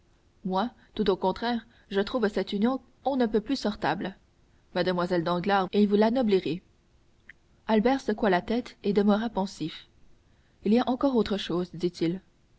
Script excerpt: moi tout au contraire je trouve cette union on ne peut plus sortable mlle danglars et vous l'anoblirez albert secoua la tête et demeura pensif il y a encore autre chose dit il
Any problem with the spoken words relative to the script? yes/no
no